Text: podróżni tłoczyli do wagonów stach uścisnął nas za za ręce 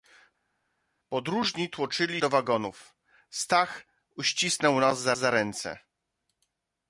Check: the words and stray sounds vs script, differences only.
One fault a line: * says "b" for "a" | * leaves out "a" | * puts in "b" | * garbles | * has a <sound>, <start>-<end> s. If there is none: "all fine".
all fine